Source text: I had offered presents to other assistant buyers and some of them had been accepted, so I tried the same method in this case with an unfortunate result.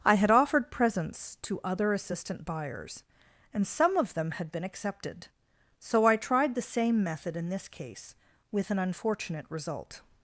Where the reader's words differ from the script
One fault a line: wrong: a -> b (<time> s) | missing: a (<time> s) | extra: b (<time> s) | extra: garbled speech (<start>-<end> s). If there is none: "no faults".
no faults